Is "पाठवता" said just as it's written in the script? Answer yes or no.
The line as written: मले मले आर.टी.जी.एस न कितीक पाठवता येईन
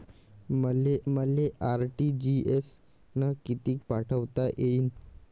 yes